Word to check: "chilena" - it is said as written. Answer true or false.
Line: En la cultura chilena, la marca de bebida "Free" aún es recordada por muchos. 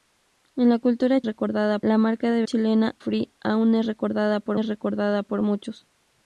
false